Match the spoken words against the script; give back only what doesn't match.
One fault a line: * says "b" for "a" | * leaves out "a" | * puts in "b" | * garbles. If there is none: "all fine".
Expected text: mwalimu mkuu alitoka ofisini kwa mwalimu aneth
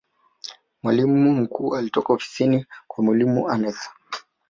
all fine